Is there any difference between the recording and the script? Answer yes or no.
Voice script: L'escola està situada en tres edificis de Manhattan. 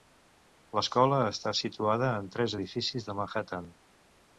no